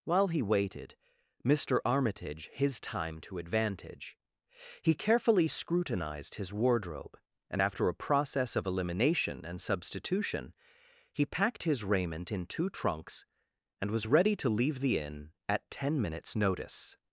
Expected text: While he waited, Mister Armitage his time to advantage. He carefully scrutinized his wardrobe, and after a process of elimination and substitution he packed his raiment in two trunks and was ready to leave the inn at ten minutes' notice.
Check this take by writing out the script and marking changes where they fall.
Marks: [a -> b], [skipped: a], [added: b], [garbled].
While he waited, Mister Armitage his time to advantage. He carefully scrutinized his wardrobe, and after a process of elimination and substitution he packed his raiment in two trunks and was ready to leave the inn at ten minutes' notice.